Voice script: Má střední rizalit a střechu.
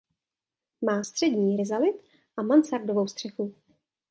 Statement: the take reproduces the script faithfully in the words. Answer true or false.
false